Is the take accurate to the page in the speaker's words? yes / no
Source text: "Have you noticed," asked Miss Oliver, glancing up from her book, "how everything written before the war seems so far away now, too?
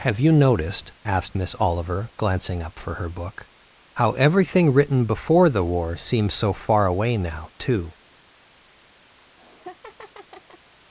no